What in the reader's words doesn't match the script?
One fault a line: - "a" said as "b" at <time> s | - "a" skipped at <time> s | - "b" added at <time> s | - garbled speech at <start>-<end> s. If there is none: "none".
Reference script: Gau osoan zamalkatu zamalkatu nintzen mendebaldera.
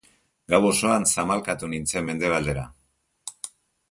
- "zamalkatu" skipped at 1.7 s